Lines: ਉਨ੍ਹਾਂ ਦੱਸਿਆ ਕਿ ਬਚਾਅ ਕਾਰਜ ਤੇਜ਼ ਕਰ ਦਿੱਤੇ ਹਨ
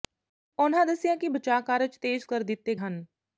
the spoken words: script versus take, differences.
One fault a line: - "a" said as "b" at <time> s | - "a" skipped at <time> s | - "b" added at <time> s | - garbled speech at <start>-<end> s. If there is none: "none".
none